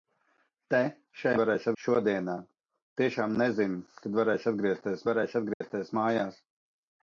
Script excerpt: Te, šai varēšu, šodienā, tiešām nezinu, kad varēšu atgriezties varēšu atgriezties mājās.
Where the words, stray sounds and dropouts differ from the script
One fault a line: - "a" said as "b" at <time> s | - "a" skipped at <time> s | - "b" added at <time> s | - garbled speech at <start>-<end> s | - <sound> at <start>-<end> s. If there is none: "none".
- dropout at 5.5-5.6 s